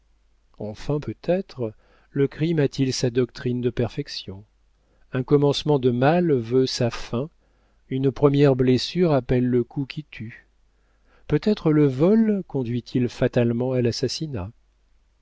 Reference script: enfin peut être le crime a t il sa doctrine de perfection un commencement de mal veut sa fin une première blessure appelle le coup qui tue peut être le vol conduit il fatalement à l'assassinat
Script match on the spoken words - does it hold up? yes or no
yes